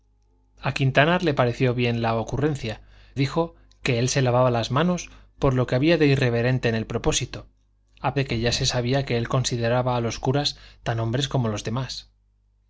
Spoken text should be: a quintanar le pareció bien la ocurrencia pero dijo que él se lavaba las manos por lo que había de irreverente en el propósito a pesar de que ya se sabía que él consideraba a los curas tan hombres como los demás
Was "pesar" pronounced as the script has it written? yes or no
no